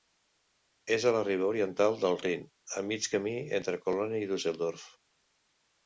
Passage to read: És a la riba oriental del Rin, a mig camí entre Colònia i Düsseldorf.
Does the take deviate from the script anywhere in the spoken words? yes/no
no